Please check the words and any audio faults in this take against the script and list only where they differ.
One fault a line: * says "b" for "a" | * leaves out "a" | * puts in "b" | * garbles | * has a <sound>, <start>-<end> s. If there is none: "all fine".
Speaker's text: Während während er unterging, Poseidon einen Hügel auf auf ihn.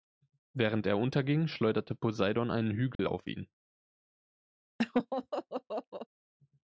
* leaves out "während"
* puts in "schleuderte"
* has a dropout, 2.9-3.0 s
* leaves out "auf"
* has a laugh, 4.8-6.1 s